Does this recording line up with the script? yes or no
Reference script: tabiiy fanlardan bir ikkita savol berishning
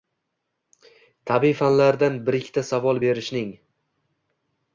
yes